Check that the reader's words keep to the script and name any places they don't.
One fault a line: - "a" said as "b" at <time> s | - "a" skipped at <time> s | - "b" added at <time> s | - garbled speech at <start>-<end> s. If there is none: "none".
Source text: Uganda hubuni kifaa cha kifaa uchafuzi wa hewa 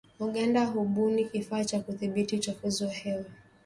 - "kifaa" said as "kudhibiti" at 1.8 s